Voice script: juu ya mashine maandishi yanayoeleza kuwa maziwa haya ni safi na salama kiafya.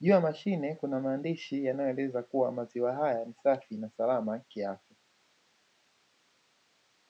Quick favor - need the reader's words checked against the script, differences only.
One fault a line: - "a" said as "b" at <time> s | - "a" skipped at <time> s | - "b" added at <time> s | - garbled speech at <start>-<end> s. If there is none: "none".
- "kuna" added at 0.8 s